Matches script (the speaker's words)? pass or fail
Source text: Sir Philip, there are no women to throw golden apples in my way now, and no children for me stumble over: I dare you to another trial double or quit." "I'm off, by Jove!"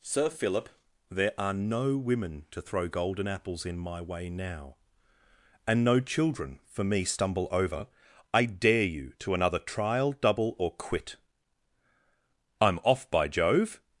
pass